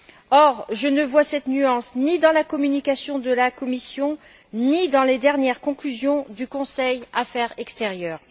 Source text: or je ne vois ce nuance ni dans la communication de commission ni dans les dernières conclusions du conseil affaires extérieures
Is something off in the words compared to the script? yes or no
yes